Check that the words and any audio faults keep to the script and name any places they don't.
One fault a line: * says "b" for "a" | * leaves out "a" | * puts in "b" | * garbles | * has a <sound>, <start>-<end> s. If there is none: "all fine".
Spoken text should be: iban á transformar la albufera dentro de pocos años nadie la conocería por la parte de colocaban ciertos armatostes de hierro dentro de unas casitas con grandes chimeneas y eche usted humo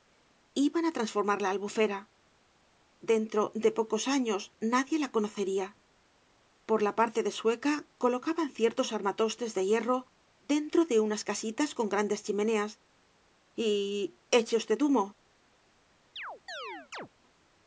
* puts in "sueca"
* has a chirp, 16.2-17.1 s